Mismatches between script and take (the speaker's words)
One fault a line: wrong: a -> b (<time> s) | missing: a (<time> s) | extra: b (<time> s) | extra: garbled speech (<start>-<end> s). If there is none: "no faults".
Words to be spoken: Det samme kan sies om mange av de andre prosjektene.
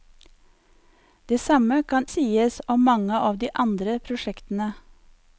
no faults